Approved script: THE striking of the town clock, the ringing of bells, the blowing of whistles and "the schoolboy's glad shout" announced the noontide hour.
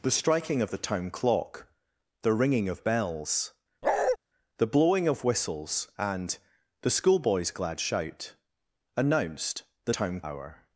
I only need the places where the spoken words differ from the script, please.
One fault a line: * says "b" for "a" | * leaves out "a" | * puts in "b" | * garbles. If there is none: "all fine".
* says "town" for "noontide"